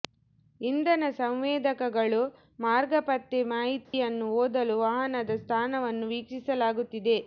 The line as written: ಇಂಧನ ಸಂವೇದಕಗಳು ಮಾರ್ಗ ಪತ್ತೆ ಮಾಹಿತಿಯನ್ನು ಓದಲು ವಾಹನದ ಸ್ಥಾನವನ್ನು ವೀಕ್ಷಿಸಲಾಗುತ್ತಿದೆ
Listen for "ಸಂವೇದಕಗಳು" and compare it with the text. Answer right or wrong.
right